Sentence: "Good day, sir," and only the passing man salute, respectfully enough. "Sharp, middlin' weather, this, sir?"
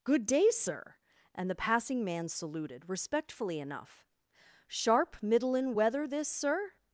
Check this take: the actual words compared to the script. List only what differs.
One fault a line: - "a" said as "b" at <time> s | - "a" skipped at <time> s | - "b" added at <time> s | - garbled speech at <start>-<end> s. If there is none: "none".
- "only" skipped at 1.5 s
- "salute" said as "saluted" at 2.3 s